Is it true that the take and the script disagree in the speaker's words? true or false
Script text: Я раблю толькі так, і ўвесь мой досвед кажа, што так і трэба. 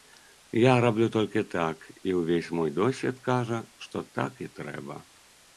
false